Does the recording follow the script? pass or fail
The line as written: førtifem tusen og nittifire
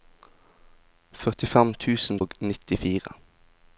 pass